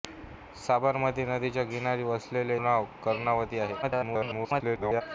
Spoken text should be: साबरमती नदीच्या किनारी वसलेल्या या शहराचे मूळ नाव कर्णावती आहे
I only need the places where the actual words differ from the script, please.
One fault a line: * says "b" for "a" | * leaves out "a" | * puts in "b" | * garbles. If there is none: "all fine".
* leaves out "या शहराचे मूळ"
* garbles